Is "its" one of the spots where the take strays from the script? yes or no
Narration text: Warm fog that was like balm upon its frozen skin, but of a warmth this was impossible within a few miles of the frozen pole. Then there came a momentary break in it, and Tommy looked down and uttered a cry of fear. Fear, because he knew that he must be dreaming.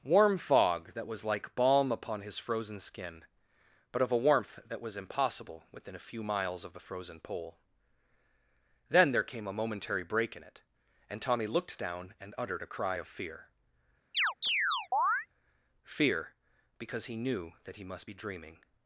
yes